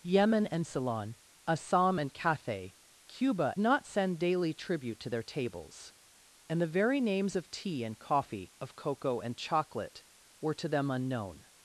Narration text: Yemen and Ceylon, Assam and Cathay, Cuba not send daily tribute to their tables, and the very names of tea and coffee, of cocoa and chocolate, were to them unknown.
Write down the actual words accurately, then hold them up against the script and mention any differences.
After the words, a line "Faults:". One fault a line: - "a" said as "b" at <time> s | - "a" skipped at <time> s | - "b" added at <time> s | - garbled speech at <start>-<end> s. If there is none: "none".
Yemen and Ceylon, Assam and Cathay, Cuba not send daily tribute to their tables, and the very names of tea and coffee, of cocoa and chocolate, were to them unknown.
Faults:
none